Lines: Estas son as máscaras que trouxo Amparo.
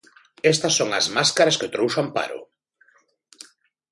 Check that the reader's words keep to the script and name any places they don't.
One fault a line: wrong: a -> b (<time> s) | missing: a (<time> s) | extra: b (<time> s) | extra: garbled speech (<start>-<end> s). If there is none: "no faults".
no faults